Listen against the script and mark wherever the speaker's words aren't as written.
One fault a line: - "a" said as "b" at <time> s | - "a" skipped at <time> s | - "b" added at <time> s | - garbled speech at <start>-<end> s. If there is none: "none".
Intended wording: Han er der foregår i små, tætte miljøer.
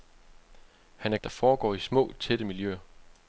none